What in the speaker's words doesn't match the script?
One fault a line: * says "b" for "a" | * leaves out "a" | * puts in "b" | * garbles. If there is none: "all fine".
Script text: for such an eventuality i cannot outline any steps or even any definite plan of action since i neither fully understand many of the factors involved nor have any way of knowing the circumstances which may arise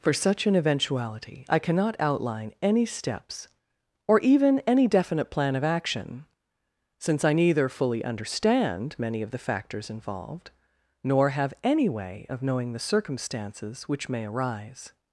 all fine